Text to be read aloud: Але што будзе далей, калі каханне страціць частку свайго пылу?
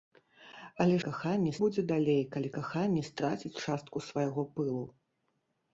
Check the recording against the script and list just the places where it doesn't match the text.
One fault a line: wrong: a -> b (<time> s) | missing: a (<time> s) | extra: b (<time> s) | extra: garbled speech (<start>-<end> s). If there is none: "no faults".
wrong: што -> каханне (1.1 s)